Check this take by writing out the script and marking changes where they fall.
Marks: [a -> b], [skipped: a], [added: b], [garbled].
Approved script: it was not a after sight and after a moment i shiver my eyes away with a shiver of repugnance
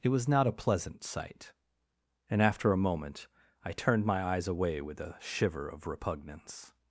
it was not a [after -> pleasant] sight and after a moment i [shiver -> turned] my eyes away with a shiver of repugnance